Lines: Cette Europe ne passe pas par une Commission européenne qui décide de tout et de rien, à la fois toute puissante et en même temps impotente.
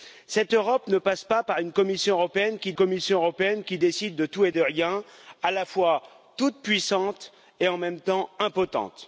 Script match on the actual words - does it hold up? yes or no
no